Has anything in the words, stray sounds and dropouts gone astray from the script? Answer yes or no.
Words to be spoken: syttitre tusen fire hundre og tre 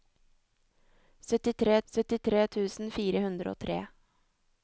yes